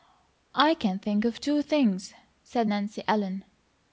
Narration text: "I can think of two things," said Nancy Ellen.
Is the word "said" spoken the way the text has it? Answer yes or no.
yes